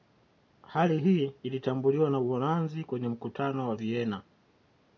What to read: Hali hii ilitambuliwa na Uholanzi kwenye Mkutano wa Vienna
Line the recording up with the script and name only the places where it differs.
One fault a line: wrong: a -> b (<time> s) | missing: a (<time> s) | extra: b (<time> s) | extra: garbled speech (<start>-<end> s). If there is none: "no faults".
no faults